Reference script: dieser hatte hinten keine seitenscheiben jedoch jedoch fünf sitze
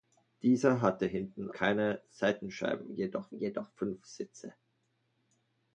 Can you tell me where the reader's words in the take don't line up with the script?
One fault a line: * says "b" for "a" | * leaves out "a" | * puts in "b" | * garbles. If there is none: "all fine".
all fine